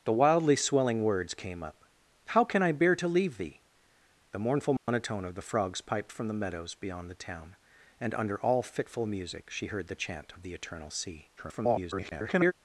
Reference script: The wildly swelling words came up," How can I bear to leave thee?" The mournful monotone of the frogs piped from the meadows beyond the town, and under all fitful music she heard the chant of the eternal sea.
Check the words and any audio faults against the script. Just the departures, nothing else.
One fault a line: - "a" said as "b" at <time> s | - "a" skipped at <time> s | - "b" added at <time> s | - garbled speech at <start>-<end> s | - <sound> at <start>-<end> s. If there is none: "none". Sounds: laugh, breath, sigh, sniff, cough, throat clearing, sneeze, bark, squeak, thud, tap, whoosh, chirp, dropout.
- dropout at 4.8-4.9 s
- garbled speech at 11.4-12.5 s